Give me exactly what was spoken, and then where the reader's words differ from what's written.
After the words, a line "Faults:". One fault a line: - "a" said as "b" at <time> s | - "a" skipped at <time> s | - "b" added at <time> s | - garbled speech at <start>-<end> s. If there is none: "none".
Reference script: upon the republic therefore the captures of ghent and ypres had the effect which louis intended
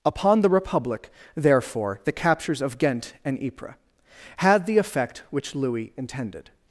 upon the republic therefore the captures of ghent and ypres had the effect which louis intended
Faults:
none